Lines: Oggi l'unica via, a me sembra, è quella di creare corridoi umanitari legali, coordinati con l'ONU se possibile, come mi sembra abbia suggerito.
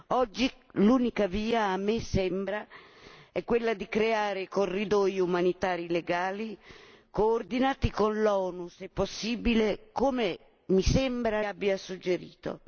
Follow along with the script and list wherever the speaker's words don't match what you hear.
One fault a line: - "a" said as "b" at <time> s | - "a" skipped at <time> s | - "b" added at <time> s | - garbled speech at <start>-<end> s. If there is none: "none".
none